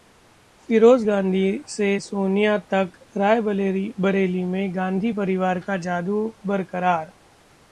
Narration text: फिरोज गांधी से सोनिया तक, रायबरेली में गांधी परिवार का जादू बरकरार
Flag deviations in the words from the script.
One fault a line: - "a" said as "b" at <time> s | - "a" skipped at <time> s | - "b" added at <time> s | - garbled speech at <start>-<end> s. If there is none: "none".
none